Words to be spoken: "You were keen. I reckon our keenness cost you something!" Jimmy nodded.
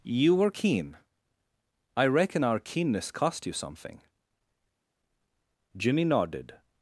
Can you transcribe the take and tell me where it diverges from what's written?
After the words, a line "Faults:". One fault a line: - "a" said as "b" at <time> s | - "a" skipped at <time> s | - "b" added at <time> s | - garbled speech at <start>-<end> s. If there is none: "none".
"You were keen. I reckon our keenness cost you something!" Jimmy nodded.
Faults:
none